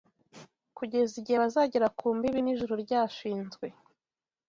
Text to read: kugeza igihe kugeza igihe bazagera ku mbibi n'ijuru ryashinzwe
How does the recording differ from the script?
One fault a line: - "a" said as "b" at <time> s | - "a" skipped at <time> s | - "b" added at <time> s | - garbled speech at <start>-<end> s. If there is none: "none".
- "kugeza igihe" skipped at 1.4 s